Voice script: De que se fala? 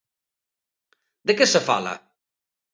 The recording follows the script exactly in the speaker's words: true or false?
true